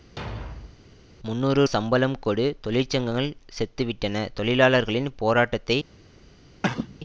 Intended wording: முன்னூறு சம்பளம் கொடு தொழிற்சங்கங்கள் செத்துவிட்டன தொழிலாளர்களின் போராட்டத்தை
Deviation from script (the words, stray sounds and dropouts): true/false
true